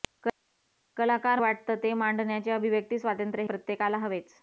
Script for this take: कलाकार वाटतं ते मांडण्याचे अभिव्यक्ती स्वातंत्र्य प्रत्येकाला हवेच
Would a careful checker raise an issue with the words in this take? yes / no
no